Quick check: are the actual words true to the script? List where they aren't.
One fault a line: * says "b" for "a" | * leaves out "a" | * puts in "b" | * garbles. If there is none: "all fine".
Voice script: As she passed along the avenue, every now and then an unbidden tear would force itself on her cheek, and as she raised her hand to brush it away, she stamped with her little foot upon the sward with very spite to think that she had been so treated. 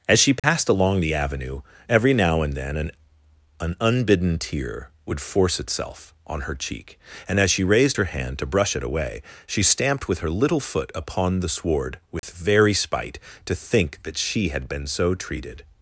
* puts in "an"